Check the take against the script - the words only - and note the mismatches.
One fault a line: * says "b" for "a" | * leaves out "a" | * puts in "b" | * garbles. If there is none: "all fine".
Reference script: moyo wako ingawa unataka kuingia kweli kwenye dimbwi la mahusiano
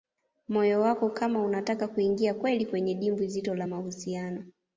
* says "kama" for "ingawa"
* puts in "zito"